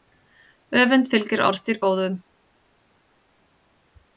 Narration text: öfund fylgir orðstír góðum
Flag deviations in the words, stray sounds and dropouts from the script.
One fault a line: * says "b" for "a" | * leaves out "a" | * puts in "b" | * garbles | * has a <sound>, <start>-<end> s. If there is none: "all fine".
all fine